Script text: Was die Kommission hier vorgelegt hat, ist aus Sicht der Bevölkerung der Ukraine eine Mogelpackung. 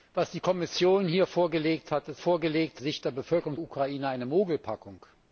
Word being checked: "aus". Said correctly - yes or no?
no